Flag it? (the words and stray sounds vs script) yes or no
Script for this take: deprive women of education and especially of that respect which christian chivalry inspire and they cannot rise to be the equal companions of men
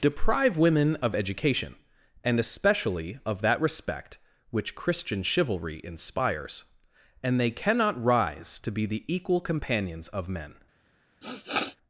yes